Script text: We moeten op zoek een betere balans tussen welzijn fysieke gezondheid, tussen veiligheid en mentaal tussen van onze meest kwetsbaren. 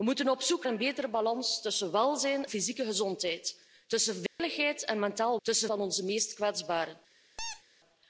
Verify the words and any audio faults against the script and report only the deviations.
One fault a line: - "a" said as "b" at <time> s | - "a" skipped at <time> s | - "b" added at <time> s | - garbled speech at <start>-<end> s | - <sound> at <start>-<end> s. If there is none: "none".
- dropout at 4.3-4.4 s
- squeak at 7.4-7.6 s